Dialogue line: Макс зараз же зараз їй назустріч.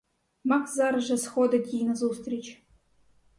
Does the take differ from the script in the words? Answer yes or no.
yes